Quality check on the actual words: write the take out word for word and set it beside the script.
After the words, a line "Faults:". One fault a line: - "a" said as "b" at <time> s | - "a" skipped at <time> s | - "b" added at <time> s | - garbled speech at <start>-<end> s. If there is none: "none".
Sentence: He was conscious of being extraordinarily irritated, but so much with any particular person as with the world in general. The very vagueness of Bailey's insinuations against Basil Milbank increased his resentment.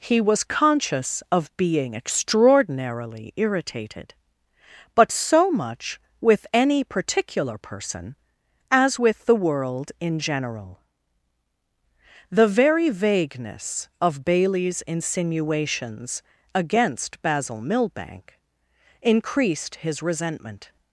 He was conscious of being extraordinarily irritated, but so much with any particular person as with the world in general. The very vagueness of Bailey's insinuations against Basil Milbank increased his resentment.
Faults:
none